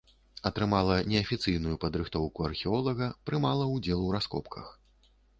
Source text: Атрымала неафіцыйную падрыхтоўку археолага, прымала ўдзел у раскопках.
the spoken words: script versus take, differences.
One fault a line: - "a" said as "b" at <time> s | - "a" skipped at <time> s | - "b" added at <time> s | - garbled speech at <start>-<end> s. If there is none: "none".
none